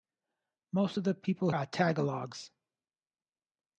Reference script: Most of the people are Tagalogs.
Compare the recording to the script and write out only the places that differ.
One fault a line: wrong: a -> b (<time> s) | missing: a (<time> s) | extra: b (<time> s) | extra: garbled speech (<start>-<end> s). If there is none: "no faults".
no faults